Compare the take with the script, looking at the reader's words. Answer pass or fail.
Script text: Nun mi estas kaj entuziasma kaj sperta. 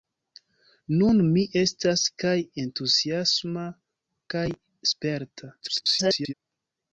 fail